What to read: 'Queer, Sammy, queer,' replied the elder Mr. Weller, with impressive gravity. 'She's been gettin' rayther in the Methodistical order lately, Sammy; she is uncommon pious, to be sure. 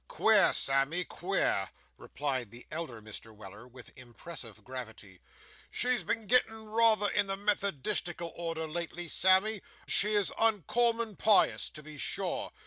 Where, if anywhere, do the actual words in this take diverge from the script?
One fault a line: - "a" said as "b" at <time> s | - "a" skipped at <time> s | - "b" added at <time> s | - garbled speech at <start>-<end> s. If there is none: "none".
none